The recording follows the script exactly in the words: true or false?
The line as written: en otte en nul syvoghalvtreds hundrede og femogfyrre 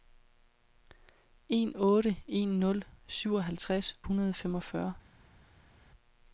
true